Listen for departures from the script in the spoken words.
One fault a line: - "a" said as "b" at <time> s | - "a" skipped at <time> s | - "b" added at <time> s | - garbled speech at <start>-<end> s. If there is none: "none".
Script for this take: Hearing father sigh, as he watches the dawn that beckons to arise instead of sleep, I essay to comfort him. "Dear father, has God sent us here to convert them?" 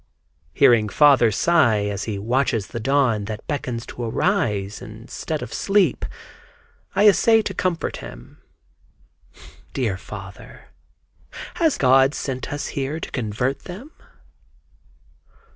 none